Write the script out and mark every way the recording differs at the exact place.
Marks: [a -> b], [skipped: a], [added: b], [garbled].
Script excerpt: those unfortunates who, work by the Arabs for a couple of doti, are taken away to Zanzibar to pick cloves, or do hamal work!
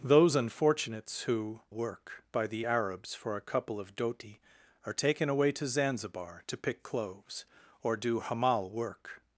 those unfortunates who, work by the Arabs for a couple of doti, are taken away to Zanzibar to pick cloves, or do hamal work!